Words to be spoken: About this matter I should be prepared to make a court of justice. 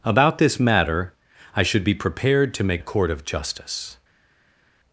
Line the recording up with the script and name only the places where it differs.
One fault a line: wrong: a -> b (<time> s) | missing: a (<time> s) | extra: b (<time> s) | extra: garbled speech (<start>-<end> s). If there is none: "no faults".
no faults